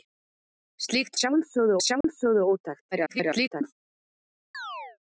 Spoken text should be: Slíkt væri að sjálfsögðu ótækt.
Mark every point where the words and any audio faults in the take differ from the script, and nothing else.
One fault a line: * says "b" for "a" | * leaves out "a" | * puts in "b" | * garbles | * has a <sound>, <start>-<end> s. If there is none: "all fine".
* says "sjálfsögðu" for "væri"
* has a dropout, 2.0-2.0 s
* garbles
* has a chirp, 4.5-5.0 s